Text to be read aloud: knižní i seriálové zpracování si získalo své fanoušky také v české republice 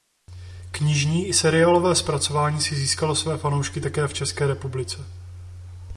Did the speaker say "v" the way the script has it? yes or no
yes